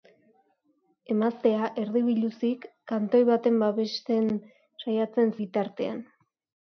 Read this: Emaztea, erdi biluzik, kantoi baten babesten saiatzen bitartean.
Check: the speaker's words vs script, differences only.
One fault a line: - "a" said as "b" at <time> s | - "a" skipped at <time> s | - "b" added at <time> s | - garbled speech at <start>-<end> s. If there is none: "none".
none